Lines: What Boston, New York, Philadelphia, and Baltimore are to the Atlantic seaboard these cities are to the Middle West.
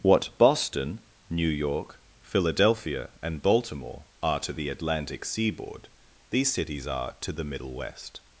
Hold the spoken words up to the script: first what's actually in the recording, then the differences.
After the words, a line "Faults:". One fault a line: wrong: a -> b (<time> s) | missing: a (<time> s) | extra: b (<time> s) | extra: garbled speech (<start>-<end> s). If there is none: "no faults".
What Boston, New York, Philadelphia, and Baltimore are to the Atlantic seaboard these cities are to the Middle West.
Faults:
no faults